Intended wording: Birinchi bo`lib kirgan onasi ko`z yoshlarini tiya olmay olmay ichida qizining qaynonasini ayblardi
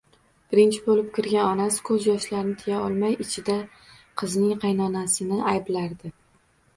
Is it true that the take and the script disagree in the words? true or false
true